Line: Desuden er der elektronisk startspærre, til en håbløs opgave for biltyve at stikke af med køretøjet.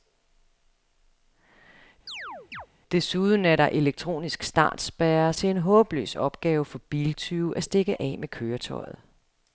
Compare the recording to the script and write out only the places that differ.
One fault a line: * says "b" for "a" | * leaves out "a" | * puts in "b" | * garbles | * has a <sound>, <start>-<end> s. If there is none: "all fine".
* has a chirp, 2.1-2.7 s